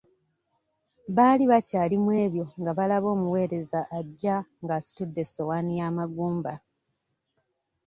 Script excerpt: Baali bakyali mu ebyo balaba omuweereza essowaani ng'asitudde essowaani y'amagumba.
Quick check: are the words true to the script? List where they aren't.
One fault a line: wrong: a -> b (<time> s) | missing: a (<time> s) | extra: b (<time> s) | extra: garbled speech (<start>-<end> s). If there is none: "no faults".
extra: nga (2.6 s)
wrong: essowaani -> ajja (4.0 s)